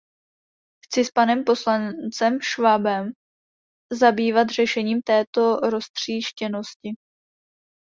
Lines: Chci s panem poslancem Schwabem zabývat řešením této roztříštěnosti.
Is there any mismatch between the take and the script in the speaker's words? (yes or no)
no